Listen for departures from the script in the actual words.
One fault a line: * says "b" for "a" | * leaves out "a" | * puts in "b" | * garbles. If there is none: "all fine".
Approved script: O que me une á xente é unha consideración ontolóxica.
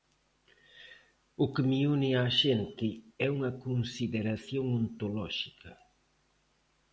all fine